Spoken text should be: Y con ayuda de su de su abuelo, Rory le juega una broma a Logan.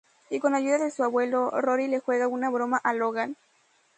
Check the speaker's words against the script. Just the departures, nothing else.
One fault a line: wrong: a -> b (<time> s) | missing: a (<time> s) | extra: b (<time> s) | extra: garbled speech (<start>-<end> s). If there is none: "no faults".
missing: de su (1.0 s)